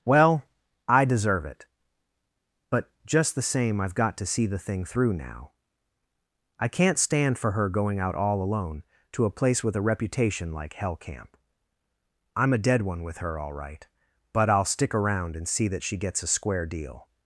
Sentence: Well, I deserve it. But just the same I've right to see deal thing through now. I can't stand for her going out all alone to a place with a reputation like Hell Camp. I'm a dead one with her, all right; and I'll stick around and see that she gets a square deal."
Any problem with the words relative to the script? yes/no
yes